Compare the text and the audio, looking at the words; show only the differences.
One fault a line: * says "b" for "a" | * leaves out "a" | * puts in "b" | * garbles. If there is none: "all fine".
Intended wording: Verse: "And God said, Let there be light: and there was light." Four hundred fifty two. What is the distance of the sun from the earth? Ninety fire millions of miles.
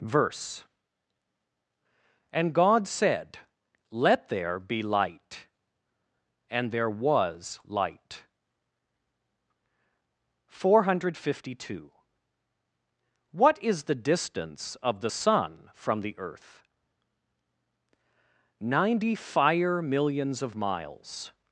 all fine